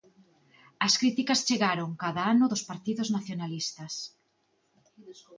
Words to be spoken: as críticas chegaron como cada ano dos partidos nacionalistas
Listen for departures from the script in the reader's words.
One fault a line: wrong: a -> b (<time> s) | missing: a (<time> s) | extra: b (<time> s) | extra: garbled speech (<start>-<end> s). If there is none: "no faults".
missing: como (1.9 s)